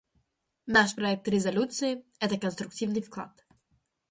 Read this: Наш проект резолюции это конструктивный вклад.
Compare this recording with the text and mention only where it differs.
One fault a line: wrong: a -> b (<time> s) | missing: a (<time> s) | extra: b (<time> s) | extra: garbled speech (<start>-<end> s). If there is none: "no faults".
no faults